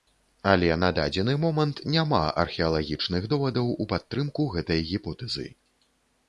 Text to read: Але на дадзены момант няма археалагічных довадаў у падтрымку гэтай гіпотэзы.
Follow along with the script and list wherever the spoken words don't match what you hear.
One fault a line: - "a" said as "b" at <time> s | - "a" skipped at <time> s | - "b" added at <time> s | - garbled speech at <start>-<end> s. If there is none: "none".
none